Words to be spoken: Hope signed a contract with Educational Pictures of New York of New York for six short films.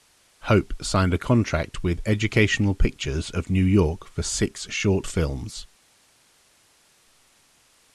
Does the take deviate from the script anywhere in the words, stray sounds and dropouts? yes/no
yes